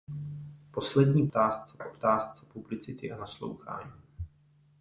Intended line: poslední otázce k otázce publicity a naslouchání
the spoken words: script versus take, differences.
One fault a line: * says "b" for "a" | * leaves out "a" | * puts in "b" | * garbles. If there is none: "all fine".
all fine